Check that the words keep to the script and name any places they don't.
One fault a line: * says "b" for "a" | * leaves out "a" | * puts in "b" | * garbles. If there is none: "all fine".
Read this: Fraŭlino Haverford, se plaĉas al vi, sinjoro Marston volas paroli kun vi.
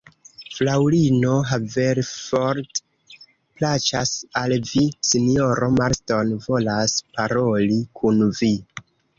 * leaves out "se"